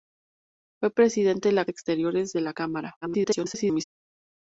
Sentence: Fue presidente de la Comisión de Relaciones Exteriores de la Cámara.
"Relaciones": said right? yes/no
no